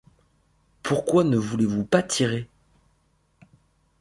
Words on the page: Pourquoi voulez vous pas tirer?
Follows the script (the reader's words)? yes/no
no